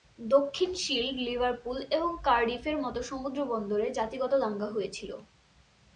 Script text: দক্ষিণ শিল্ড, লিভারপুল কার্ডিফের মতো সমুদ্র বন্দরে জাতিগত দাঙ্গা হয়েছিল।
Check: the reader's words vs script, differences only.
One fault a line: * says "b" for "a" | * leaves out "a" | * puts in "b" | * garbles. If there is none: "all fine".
* puts in "এবং"